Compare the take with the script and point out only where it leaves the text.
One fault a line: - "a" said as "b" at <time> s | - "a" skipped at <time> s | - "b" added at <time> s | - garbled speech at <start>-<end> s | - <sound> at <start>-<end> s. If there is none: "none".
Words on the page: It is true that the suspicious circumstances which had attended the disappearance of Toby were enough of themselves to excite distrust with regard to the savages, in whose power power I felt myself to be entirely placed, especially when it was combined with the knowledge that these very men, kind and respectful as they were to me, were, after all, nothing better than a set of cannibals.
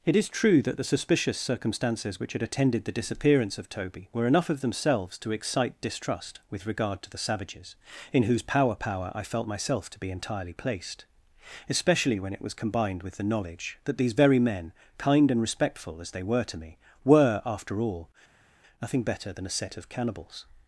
none